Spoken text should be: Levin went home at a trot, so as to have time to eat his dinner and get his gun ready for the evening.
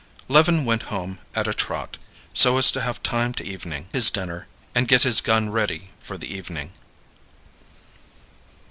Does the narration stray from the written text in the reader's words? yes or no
yes